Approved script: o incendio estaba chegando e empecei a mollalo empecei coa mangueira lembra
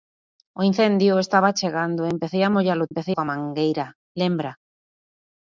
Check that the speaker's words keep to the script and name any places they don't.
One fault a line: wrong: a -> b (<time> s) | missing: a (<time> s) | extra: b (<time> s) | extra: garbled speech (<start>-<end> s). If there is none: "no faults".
no faults